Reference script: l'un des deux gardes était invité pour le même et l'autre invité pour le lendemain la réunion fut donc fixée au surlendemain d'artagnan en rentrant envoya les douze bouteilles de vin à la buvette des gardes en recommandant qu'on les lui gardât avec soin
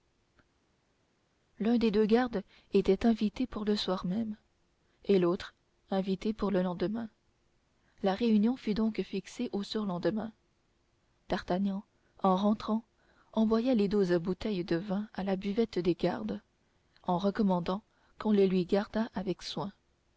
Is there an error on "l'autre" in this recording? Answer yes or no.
no